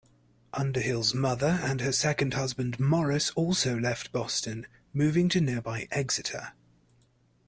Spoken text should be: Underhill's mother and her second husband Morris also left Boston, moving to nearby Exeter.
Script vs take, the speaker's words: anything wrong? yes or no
no